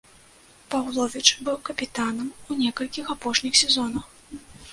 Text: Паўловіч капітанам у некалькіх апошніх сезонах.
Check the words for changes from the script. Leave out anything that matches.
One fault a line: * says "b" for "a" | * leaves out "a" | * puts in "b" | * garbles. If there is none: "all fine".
* puts in "быў"